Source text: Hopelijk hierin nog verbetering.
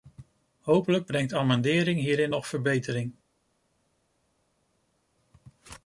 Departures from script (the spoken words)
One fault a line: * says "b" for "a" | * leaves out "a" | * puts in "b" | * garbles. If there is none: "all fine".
* puts in "brengt amendering"